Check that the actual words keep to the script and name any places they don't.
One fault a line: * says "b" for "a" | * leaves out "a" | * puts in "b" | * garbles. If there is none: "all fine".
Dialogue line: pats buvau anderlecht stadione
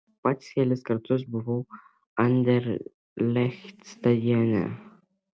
* puts in "kelis kartus"